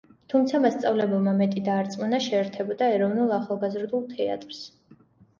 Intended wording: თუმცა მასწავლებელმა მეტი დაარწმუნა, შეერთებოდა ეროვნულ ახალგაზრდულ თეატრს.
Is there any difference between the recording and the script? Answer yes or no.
no